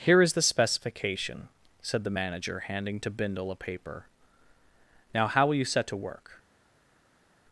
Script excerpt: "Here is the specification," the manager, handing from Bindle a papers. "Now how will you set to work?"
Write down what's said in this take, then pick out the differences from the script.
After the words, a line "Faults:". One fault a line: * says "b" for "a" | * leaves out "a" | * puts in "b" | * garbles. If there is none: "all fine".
"Here is the specification," said the manager, handing to Bindle a paper. "Now how will you set to work?"
Faults:
* puts in "said"
* says "to" for "from"
* says "paper" for "papers"